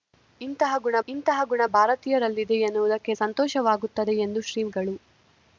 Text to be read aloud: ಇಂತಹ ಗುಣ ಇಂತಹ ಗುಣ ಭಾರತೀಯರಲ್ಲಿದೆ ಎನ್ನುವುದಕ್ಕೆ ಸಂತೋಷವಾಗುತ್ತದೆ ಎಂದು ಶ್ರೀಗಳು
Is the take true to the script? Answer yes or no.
yes